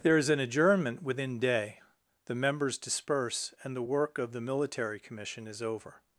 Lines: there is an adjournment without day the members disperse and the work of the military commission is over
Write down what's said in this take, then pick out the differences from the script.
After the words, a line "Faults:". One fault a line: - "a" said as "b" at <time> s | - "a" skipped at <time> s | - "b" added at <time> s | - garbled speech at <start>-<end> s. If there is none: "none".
there is an adjournment within day the members disperse and the work of the military commission is over
Faults:
- "without" said as "within" at 1.0 s